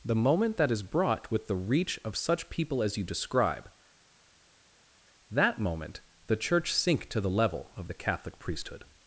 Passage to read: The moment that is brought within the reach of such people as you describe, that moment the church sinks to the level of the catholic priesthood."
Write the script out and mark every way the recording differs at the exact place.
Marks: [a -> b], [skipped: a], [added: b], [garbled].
The moment that is brought [within -> with] the reach of such people as you describe, that moment the church [sinks -> sink] to the level of the catholic priesthood."